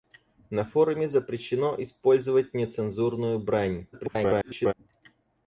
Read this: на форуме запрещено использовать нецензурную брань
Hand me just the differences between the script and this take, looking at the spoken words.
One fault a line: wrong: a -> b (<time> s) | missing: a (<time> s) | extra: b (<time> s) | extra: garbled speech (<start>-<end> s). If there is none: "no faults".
extra: garbled speech (3.9-4.7 s)